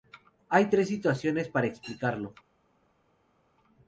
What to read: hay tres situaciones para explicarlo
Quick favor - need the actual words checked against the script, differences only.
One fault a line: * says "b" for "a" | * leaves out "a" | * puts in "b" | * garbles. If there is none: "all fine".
all fine